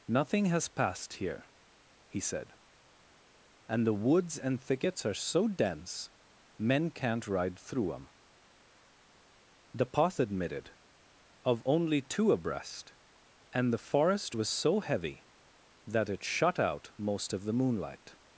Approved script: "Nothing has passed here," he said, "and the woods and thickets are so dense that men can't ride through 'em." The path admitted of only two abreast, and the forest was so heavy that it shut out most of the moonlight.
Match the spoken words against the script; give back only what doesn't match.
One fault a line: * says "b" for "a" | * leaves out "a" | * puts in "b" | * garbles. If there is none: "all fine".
* leaves out "that"